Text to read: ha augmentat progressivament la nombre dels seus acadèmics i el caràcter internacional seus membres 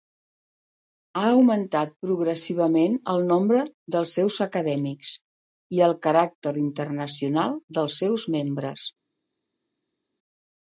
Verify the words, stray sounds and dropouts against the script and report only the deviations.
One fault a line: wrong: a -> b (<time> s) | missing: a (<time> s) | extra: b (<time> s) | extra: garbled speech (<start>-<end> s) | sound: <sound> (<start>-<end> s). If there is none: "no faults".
wrong: la -> el (3.1 s)
extra: dels (7.8 s)